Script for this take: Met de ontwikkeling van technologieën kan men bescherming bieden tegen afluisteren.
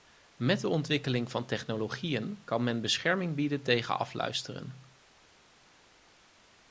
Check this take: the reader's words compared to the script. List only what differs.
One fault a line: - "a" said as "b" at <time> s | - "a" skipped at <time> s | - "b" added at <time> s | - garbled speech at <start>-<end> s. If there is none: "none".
none